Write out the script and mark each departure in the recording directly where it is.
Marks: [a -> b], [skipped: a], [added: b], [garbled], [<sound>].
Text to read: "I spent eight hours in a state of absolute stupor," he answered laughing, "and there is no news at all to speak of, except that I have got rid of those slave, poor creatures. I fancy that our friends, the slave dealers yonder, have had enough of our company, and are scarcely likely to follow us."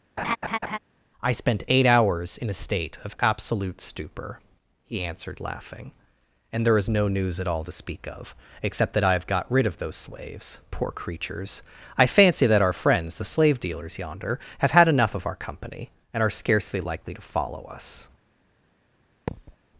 [laugh] "I spent eight hours in a state of absolute stupor," he answered laughing, "and there is no news at all to speak of, except that I have got rid of those [slave, -> slaves] poor creatures. I fancy that our friends, the slave dealers yonder, have had enough of our company, and are scarcely likely to follow us." [thud]